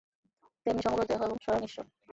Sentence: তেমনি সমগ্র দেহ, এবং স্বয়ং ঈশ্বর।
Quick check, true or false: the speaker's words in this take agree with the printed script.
true